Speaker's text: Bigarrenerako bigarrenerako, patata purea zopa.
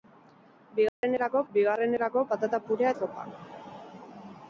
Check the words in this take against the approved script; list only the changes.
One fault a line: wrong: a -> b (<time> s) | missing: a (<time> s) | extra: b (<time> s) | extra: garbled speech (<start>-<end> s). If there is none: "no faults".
no faults